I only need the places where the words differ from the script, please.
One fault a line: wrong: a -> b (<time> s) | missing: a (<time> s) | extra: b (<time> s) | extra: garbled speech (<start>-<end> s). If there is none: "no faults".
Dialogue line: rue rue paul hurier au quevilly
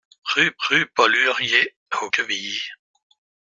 no faults